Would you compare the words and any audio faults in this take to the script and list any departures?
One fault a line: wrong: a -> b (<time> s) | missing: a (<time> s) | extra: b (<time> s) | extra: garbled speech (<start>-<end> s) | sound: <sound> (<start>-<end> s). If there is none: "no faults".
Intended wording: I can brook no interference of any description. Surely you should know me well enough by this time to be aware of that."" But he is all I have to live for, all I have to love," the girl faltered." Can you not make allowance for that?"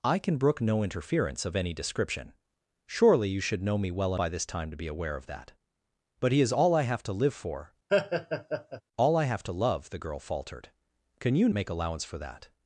missing: enough (4.2 s)
sound: laugh (7.9-8.8 s)
missing: not (11.5 s)